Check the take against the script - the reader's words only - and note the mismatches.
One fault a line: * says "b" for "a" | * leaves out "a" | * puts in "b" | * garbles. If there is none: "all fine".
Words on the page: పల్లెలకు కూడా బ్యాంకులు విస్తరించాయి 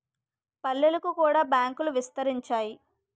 all fine